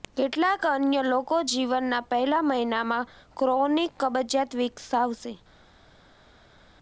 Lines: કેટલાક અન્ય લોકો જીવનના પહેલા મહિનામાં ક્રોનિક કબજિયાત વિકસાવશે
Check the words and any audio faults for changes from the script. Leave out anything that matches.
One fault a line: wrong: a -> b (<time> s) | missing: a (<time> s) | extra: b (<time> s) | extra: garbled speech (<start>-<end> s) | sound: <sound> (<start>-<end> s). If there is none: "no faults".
no faults